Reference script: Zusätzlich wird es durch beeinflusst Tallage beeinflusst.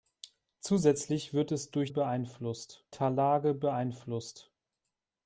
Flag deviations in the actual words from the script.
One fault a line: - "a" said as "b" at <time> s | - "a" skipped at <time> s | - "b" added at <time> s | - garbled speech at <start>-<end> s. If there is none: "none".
none